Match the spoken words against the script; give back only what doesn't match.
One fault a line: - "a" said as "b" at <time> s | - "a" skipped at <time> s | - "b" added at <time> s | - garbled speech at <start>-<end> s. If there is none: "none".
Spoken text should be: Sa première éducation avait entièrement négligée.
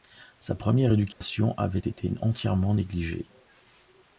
- "été" added at 1.8 s